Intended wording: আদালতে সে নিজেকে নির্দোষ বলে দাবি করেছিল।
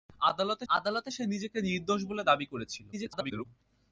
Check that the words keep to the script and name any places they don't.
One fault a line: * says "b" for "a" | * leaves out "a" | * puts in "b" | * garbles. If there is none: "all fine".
* puts in "আদালতে"
* garbles